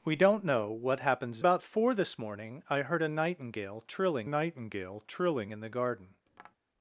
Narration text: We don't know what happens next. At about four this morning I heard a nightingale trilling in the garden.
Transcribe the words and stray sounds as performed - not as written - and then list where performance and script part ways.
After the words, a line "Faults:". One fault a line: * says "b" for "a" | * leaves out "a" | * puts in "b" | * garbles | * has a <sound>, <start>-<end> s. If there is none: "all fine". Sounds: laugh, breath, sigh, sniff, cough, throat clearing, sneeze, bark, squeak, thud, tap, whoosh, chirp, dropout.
We don't know what happens about four this morning I heard a nightingale trilling nightingale trilling in the garden.
Faults:
* leaves out "next At"
* puts in "nightingale trilling"
* has a tap, 6.3-6.6 s